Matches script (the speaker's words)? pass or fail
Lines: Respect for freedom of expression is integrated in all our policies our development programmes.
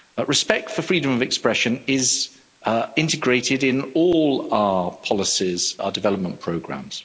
pass